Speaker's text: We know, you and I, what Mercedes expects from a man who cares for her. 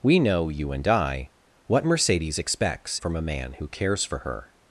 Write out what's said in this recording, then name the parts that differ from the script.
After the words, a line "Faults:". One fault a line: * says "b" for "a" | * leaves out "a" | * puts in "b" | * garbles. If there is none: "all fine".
We know, you and I, what Mercedes expects from a man who cares for her.
Faults:
all fine